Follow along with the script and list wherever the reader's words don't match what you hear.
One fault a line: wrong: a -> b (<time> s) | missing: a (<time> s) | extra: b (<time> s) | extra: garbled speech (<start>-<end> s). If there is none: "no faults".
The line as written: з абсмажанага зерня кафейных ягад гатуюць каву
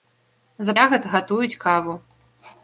missing: абсмажанага зерня кафейных (0.7 s)